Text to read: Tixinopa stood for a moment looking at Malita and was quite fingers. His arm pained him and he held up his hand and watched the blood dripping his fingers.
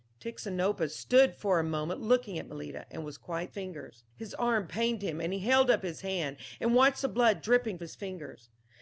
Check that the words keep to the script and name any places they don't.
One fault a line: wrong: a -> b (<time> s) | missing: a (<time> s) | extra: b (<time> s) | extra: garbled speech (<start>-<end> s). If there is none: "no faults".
no faults